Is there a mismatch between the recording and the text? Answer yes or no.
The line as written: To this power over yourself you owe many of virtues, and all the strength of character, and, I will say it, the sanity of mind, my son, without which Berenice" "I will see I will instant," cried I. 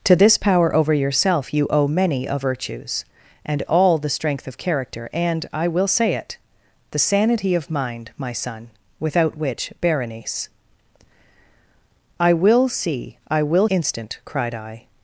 no